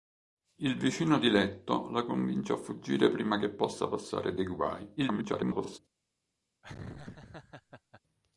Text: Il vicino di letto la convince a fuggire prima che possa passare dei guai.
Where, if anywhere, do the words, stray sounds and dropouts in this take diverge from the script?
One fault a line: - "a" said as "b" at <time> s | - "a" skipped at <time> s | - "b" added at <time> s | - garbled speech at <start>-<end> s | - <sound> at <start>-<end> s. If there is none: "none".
- garbled speech at 5.0-5.8 s
- laugh at 6.6-8.0 s